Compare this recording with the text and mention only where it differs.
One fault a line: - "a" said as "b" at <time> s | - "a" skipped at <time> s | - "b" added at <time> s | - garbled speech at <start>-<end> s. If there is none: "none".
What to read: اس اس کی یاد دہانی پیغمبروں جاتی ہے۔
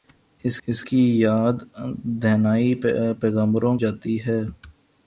none